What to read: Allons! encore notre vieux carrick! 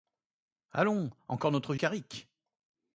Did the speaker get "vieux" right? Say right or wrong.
wrong